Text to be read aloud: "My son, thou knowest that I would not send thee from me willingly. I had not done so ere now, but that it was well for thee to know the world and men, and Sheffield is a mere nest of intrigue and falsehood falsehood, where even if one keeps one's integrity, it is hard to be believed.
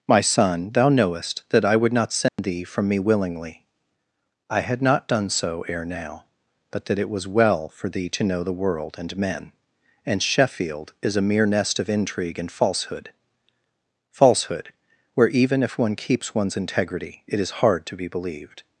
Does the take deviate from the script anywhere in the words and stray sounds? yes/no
yes